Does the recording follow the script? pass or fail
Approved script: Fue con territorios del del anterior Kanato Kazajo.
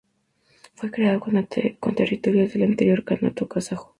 fail